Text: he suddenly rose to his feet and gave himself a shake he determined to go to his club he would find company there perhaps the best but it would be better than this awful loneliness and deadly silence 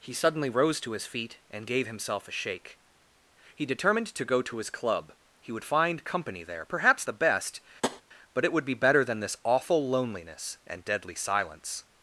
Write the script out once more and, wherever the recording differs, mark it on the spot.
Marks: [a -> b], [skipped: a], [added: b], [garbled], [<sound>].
he suddenly rose to his feet and gave himself a shake he determined to go to his club he would find company there perhaps the best [tap] but it would be better than this awful loneliness and deadly silence